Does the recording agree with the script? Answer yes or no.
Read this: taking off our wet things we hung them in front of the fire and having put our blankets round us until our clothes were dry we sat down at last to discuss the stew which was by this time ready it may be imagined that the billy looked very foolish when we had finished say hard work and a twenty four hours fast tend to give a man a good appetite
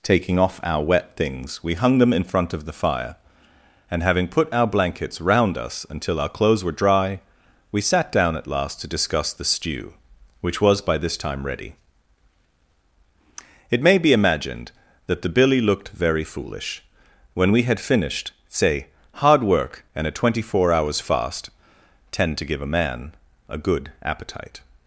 yes